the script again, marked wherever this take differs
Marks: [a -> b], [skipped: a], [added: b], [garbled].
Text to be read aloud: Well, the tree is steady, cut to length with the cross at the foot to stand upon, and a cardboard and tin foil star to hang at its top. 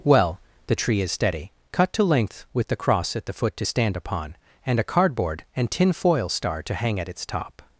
Well, the tree is steady, cut to length with the cross at the foot to stand upon, and a cardboard and tin foil star to hang at its top.